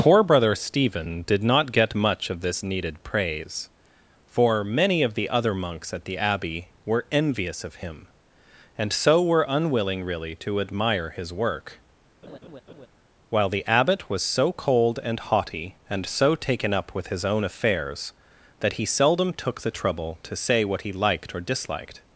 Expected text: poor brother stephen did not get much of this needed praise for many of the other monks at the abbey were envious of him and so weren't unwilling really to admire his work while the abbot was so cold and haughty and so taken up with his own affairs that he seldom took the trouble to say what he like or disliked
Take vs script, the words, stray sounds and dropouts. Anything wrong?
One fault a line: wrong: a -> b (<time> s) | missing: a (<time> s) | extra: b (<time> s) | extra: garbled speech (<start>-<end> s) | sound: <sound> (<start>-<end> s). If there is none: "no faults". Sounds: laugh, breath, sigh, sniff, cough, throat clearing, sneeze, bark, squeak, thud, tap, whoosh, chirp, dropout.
wrong: weren't -> were (9.2 s)
sound: laugh (12.2-12.9 s)
wrong: like -> liked (20.9 s)